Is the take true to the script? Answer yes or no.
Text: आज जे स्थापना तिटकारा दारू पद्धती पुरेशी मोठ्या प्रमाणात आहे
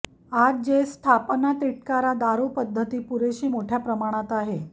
yes